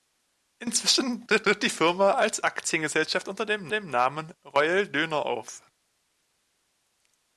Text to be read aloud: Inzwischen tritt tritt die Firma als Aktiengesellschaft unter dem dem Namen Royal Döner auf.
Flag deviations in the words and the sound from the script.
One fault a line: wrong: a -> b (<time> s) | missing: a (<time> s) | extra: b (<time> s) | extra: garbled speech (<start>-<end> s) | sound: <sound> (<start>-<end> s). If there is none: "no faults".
no faults